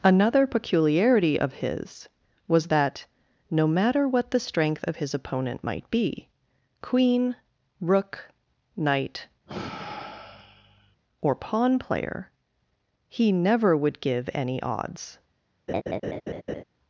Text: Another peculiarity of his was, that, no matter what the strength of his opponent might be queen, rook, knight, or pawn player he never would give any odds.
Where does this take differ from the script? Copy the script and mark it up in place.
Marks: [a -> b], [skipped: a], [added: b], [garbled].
Another peculiarity of his was, that, no matter what the strength of his opponent might be queen, rook, knight, or pawn player he never would give any odds.